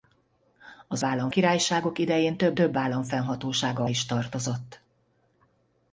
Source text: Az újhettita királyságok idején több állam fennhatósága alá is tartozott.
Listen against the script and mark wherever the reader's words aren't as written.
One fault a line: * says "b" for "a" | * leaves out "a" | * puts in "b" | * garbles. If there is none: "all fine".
* says "állam" for "újhettita"
* puts in "több"
* leaves out "alá"